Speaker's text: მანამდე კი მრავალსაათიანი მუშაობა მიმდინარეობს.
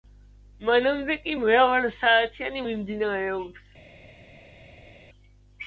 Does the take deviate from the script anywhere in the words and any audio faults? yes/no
yes